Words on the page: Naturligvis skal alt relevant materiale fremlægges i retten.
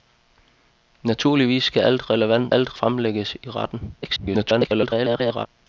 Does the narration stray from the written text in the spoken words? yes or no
yes